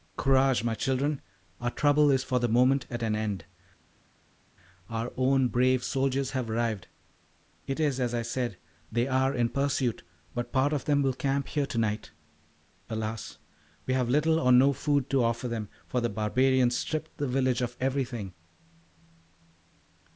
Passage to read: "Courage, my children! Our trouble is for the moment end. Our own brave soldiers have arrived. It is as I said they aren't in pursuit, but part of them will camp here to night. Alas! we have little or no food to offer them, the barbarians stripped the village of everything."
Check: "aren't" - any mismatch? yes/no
yes